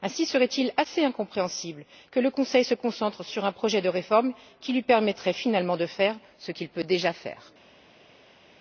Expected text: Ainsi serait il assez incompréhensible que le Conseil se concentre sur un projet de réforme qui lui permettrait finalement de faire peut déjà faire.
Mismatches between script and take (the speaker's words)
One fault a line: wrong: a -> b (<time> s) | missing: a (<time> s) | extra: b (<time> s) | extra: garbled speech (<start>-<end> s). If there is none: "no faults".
extra: ce qu'il (6.4 s)